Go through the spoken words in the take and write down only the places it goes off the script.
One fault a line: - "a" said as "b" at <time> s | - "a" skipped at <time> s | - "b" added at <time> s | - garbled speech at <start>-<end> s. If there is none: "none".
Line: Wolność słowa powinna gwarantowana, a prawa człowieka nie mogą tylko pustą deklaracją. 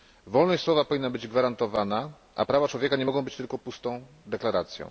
- "być" added at 1.1 s
- "być" added at 3.2 s